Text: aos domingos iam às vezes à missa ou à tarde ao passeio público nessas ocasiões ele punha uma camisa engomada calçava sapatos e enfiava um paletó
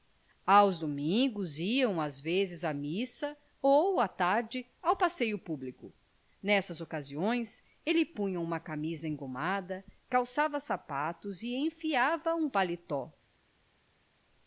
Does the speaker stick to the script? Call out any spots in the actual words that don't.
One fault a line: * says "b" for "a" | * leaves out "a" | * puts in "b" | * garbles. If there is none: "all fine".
all fine